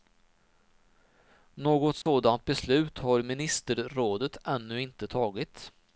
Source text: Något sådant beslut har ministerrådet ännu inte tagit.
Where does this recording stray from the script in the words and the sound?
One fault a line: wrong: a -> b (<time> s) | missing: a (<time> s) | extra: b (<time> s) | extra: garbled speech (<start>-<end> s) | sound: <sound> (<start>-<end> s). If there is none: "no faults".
sound: dropout (2.0-2.1 s)